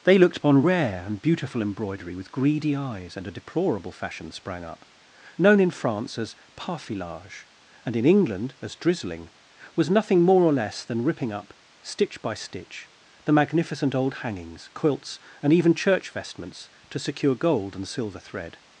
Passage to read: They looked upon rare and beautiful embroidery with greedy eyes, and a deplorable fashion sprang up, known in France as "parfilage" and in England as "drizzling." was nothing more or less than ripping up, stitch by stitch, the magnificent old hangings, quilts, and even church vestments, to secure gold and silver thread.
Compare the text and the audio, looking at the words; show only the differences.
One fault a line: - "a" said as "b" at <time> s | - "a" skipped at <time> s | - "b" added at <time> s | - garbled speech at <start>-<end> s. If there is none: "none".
none